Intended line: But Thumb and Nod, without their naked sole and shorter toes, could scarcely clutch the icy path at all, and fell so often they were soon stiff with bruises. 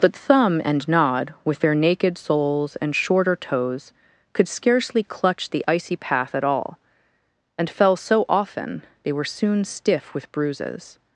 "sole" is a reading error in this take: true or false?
true